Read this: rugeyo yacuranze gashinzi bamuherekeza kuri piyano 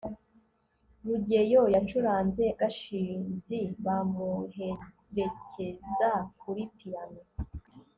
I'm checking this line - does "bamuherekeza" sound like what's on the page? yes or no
yes